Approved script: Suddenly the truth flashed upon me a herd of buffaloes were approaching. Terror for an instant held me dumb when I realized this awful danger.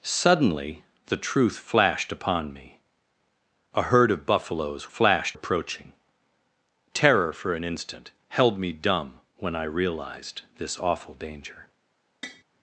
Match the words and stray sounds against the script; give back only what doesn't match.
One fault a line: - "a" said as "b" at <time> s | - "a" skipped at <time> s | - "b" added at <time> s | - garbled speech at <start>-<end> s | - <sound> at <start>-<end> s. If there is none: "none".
- "were" said as "flashed" at 4.9 s
- tap at 12.2-12.4 s